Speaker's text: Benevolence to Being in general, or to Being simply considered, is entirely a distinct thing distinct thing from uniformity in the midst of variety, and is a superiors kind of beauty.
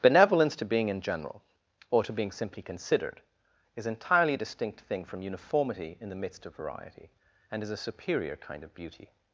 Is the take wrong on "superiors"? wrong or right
wrong